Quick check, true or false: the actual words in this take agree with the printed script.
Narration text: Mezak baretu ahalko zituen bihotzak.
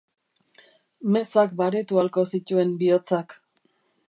true